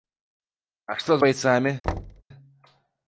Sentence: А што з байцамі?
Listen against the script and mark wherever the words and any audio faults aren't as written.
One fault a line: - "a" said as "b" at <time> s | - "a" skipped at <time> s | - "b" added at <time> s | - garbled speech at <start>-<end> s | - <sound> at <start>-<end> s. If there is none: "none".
- thud at 1.8-2.2 s